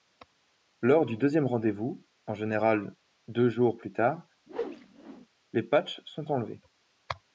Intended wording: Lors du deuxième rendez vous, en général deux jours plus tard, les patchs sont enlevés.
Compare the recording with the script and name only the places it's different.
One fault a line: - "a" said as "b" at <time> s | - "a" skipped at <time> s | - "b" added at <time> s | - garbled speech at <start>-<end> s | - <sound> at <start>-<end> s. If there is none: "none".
- whoosh at 4.5-5.3 s